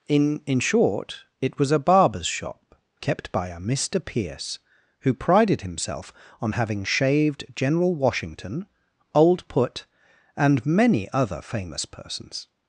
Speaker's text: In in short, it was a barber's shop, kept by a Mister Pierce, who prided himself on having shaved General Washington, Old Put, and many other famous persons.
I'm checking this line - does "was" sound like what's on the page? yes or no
yes